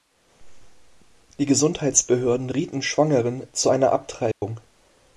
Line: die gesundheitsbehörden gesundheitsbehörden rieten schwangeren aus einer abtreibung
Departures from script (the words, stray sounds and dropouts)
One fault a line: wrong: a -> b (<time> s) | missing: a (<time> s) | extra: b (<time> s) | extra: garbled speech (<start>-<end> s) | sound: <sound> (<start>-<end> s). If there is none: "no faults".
missing: gesundheitsbehörden (2.5 s)
wrong: aus -> zu (3.5 s)
sound: dropout (4.3-4.4 s)